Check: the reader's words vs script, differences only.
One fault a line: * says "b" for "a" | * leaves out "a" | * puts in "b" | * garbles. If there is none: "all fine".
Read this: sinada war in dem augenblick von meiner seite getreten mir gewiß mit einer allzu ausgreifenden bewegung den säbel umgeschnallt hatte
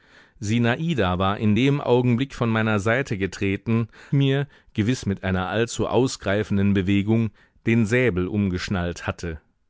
all fine